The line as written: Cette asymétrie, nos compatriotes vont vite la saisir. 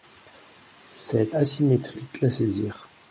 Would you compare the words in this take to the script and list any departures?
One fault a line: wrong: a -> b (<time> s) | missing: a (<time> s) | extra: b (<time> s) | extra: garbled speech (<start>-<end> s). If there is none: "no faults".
missing: nos compatriotes vont (2.0 s)